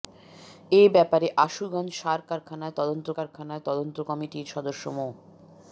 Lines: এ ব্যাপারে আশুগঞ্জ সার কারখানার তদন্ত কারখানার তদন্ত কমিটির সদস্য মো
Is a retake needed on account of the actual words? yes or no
no